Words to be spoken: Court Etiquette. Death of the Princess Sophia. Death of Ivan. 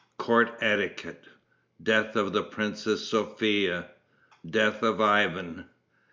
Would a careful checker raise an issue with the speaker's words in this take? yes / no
no